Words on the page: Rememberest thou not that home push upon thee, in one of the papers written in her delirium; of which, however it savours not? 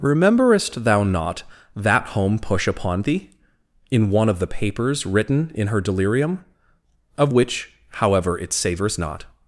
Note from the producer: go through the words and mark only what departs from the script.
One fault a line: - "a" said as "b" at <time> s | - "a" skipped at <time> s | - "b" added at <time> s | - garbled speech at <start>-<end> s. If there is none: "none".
none